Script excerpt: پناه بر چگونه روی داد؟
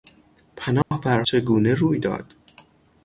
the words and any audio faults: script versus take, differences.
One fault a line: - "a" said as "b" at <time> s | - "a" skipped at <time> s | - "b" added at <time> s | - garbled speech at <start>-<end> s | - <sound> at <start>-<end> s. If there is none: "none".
- dropout at 0.8-0.9 s